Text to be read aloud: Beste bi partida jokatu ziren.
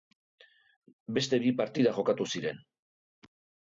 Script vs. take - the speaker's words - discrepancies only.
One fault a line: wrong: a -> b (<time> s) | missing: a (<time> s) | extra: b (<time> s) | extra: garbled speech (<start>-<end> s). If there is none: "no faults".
no faults